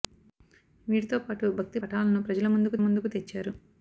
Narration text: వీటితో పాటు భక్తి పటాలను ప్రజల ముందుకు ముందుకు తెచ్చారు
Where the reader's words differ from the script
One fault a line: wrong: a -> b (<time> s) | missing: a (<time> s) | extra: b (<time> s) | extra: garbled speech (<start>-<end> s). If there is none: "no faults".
no faults